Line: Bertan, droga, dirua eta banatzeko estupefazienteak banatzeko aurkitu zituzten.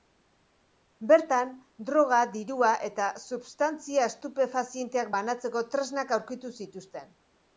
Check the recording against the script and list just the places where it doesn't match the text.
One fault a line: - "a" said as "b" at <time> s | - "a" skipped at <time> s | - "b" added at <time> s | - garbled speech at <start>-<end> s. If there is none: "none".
- "banatzeko" said as "substantzia" at 3.2 s
- "tresnak" added at 5.7 s